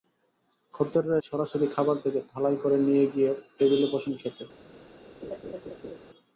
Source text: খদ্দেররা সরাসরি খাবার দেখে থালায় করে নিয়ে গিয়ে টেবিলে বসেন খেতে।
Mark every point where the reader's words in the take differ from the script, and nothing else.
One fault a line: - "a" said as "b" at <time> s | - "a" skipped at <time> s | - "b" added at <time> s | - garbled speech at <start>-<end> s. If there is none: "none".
none